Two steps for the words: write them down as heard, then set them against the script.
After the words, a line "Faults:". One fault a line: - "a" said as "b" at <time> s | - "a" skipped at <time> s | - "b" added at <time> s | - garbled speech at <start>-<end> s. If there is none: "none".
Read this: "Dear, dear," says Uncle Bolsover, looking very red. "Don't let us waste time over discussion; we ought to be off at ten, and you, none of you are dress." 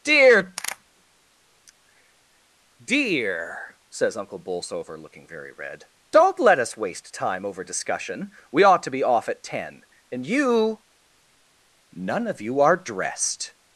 "Dear, dear," says Uncle Bolsover, looking very red. "Don't let us waste time over discussion; we ought to be off at ten, and you, none of you are dressed."
Faults:
- "dress" said as "dressed" at 12.8 s